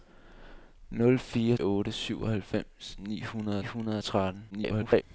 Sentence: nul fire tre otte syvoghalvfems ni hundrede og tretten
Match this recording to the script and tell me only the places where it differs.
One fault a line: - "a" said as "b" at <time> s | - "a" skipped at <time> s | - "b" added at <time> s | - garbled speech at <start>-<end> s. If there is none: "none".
- "tre" skipped at 1.6 s
- "hundrede" added at 3.6 s
- garbled speech at 4.5-5.0 s